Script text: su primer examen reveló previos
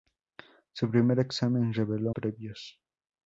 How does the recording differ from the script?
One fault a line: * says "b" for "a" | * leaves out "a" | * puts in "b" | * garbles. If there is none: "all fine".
all fine